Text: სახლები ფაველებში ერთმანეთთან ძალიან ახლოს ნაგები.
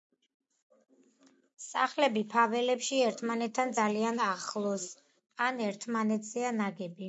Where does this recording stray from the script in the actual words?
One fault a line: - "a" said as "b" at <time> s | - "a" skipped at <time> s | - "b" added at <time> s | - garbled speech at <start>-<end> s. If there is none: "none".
- "ან ერთმანეთზეა" added at 5.5 s